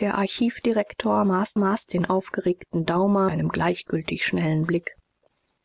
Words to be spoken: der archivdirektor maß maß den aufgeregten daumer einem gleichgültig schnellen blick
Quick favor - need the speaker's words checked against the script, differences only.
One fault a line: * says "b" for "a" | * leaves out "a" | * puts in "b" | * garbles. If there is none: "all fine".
all fine